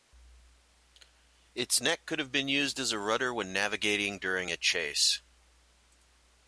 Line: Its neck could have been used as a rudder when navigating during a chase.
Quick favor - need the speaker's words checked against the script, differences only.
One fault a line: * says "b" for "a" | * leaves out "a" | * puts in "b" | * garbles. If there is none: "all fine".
all fine